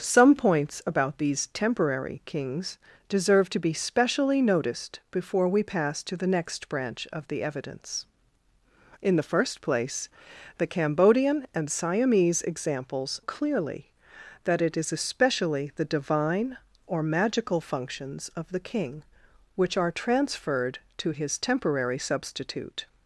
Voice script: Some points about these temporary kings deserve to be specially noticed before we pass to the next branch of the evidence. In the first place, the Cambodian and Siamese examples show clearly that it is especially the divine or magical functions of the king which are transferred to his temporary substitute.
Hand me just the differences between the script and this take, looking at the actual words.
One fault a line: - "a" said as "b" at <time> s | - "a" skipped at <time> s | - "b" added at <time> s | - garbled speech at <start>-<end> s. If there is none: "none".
- "show" skipped at 13.2 s